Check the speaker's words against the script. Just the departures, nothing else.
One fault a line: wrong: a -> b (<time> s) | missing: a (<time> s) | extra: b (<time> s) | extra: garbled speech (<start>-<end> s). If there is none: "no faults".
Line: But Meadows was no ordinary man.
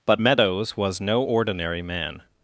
no faults